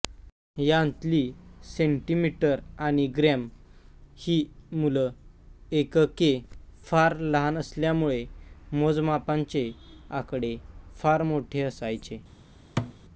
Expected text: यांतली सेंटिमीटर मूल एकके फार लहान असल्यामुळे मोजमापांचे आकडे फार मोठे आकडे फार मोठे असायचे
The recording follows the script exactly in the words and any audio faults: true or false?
false